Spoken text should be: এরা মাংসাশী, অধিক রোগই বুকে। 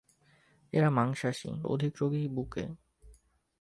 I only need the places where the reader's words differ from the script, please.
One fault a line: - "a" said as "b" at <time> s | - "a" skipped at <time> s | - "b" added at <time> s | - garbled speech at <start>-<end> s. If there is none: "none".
none